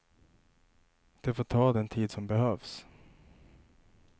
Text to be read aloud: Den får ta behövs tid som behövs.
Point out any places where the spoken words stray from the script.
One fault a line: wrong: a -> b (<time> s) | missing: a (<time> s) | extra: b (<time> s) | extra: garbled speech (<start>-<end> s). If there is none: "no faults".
wrong: Den -> Det (1.2 s)
wrong: behövs -> den (1.7 s)